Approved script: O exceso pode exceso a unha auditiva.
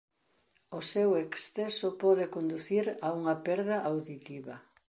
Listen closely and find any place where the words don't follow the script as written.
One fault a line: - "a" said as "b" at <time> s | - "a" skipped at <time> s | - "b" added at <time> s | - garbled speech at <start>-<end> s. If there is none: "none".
- "seu" added at 0.9 s
- "exceso" said as "conducir" at 2.3 s
- "perda" added at 3.5 s